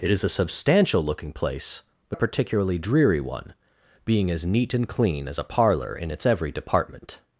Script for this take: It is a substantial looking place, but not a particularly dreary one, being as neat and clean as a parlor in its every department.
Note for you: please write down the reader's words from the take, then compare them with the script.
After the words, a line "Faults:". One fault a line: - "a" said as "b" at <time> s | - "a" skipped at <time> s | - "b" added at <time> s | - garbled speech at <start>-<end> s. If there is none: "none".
It is a substantial looking place, but a particularly dreary one, being as neat and clean as a parlor in its every department.
Faults:
- "not" skipped at 2.2 s